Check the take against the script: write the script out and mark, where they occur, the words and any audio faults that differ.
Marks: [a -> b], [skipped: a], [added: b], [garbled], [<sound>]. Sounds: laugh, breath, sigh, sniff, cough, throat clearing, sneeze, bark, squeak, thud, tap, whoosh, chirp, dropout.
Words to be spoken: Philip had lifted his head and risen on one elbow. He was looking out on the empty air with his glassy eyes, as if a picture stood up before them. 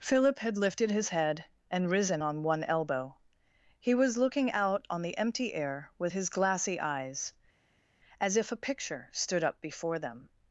Philip had lifted his head and risen on one elbow. He was looking out on the empty air with his glassy eyes, as if a picture stood up before them.